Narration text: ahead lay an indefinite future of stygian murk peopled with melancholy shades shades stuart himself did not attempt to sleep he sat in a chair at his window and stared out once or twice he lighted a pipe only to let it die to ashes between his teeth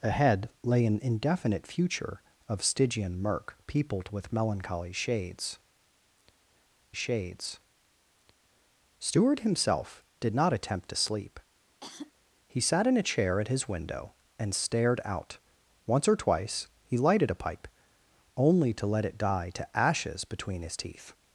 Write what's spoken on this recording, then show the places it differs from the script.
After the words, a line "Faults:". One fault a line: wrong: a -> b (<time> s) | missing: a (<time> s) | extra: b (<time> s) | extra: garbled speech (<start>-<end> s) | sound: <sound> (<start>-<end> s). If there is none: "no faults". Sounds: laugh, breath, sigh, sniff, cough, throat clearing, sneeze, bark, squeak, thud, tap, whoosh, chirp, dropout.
ahead lay an indefinite future of stygian murk peopled with melancholy shades shades stuart himself did not attempt to sleep he sat in a chair at his window and stared out once or twice he lighted a pipe only to let it die to ashes between his teeth
Faults:
sound: cough (11.8-12.1 s)